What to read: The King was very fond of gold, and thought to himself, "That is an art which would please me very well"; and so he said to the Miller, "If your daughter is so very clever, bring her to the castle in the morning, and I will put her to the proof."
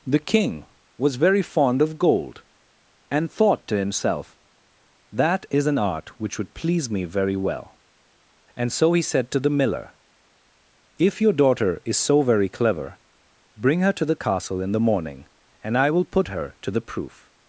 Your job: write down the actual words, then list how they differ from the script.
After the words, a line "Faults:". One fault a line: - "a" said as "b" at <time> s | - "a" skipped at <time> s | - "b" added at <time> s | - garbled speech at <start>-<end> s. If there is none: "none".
The King was very fond of gold, and thought to himself, "That is an art which would please me very well"; and so he said to the Miller, "If your daughter is so very clever, bring her to the castle in the morning, and I will put her to the proof."
Faults:
none